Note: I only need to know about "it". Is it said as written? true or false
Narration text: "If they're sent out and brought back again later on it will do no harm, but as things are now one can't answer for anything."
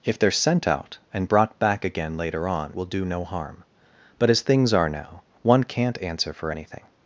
false